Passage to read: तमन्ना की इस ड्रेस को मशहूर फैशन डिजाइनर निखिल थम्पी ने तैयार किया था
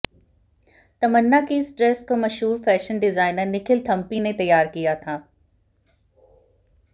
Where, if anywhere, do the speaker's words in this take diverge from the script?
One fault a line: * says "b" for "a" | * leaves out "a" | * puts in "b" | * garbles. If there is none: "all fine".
all fine